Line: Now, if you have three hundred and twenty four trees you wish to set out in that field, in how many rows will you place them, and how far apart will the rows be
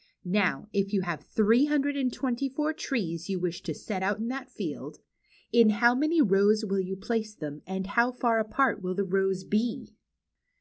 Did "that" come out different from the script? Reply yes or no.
no